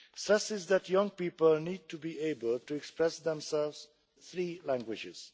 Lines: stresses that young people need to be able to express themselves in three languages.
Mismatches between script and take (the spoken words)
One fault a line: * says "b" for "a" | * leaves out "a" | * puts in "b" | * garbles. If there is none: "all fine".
* leaves out "in"